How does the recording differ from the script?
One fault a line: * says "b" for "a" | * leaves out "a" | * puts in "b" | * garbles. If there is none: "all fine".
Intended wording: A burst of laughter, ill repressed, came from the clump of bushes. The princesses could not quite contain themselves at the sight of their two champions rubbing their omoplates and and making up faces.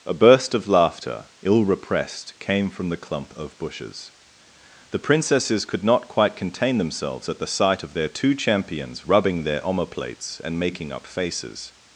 * leaves out "and"